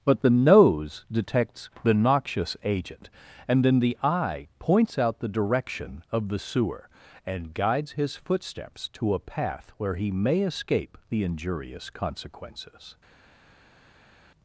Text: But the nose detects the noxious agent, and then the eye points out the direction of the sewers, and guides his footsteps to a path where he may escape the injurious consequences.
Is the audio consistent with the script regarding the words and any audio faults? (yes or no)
no